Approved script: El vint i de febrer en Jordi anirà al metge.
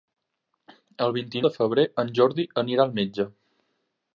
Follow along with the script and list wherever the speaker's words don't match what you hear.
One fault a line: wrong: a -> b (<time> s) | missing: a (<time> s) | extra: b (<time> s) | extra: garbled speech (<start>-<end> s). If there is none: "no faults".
no faults